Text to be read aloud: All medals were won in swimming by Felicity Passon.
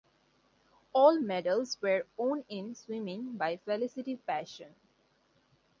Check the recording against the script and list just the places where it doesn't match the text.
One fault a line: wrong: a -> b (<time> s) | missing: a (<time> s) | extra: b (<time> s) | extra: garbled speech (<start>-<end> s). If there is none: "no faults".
no faults